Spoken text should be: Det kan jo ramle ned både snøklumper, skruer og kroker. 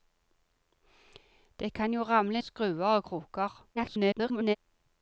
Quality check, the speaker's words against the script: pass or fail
fail